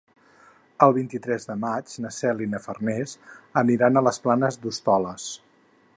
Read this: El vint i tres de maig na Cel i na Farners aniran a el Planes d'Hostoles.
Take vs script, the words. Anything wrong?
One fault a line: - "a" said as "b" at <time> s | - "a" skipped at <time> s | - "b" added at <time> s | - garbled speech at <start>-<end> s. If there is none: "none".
- "el" said as "les" at 4.1 s